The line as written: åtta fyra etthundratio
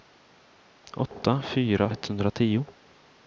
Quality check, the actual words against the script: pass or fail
pass